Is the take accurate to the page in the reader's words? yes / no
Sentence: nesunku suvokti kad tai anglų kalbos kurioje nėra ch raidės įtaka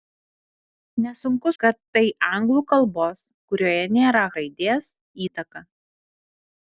no